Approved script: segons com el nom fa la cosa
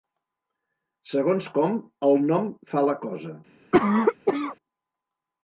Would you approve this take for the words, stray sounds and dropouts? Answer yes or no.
no